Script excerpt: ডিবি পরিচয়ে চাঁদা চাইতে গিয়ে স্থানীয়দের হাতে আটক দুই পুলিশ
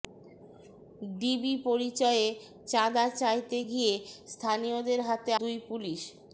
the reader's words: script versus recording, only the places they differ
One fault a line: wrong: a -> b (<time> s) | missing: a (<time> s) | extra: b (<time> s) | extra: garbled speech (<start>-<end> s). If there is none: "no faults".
missing: আটক (5.3 s)